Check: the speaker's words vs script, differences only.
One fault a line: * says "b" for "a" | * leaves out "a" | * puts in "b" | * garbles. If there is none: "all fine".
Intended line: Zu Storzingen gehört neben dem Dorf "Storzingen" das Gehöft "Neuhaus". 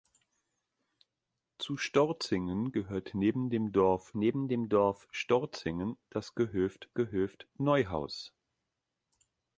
* puts in "neben dem Dorf"
* puts in "Gehöft"